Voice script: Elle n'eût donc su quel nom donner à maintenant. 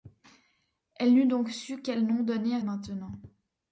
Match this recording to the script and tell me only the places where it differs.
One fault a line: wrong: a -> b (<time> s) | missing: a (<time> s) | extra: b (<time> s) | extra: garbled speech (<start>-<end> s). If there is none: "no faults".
no faults